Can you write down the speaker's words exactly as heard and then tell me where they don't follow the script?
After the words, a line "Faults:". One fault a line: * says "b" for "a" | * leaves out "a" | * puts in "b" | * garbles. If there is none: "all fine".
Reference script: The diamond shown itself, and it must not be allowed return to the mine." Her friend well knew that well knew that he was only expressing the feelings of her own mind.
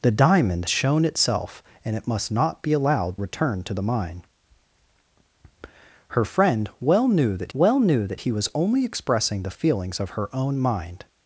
The diamond shown itself, and it must not be allowed return to the mine." Her friend well knew that well knew that he was only expressing the feelings of her own mind.
Faults:
all fine